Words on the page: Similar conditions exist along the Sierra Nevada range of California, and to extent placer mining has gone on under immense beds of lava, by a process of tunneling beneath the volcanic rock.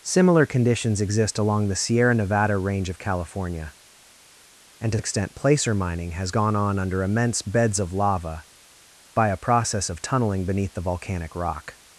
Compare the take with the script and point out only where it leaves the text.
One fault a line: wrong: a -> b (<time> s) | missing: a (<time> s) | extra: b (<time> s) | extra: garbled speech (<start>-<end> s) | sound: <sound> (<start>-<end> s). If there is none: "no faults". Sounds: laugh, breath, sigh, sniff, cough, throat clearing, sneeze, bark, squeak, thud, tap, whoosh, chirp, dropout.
no faults